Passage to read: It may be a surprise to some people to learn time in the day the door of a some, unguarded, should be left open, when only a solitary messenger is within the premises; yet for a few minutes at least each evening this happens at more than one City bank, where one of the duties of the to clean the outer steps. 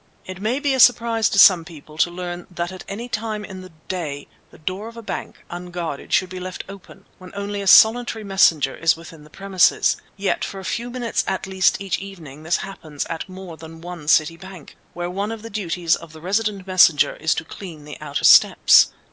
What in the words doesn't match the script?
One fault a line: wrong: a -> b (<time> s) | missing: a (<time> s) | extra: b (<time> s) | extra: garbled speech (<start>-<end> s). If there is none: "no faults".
extra: that at any (2.5 s)
wrong: some -> bank (5.0 s)
extra: resident messenger is (16.2 s)